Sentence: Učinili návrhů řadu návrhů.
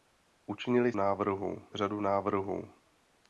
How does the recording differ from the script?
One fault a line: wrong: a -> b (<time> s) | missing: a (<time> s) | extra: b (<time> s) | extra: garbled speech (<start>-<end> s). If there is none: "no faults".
no faults